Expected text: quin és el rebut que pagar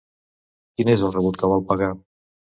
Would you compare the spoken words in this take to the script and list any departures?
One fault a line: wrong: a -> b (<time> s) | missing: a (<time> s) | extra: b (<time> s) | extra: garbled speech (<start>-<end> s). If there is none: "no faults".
extra: vol (1.5 s)